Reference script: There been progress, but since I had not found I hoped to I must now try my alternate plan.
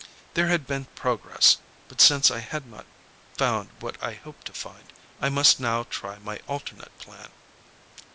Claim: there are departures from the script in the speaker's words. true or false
true